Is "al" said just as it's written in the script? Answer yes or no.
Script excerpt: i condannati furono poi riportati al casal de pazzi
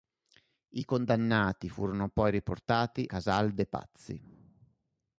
no